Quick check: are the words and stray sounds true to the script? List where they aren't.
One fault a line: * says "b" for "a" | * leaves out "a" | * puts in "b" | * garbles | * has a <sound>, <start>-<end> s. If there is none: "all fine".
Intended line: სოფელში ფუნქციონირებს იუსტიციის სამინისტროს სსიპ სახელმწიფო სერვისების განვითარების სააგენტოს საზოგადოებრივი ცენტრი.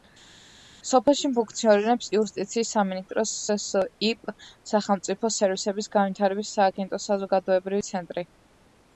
all fine